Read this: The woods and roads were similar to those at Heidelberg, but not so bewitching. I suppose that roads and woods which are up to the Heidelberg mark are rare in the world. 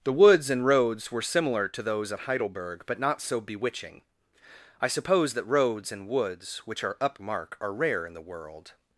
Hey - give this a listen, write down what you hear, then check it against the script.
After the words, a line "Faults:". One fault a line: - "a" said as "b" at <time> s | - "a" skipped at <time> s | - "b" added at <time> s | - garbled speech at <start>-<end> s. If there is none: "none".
The woods and roads were similar to those at Heidelberg, but not so bewitching. I suppose that roads and woods which are up mark are rare in the world.
Faults:
- "to the Heidelberg" skipped at 7.2 s